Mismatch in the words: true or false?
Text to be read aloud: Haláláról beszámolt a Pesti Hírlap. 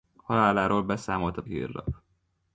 true